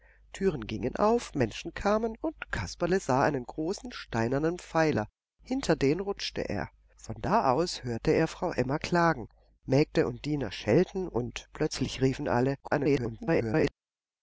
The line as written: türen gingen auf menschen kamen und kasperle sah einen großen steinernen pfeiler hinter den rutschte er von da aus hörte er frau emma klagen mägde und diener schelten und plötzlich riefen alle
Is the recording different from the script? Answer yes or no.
yes